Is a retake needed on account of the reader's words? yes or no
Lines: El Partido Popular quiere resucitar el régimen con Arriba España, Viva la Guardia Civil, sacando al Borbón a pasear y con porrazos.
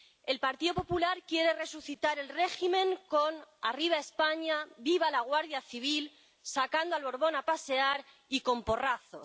no